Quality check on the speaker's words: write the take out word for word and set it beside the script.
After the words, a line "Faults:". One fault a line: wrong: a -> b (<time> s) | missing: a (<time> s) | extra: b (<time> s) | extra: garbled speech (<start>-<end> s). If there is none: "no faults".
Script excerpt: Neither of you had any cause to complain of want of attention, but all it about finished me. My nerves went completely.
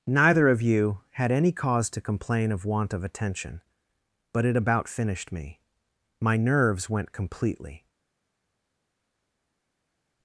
Neither of you had any cause to complain of want of attention, but it about finished me. My nerves went completely.
Faults:
missing: all (4.5 s)